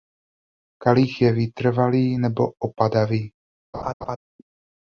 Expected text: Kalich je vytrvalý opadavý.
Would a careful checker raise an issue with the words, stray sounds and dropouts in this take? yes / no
yes